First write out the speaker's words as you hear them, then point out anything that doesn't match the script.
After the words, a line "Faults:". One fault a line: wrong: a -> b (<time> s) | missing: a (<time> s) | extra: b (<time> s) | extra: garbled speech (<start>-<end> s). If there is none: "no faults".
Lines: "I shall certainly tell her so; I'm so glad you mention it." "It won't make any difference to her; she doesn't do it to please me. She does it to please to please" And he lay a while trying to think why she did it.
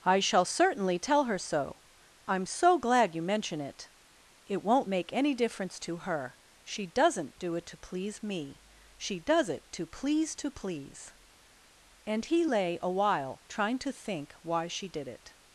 "I shall certainly tell her so; I'm so glad you mention it." "It won't make any difference to her; she doesn't do it to please me. She does it to please to please" And he lay a while trying to think why she did it.
Faults:
no faults